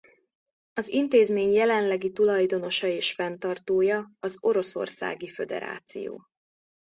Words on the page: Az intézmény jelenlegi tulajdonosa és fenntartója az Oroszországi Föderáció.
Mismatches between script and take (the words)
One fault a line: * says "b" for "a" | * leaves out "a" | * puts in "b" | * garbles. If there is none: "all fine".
all fine